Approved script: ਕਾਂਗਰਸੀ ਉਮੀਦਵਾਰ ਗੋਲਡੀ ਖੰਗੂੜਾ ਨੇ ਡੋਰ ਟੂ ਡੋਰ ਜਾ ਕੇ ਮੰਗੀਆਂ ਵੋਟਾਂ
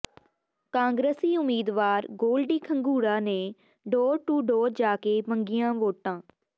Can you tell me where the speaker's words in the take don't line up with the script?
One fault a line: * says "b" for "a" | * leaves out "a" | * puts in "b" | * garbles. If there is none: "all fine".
all fine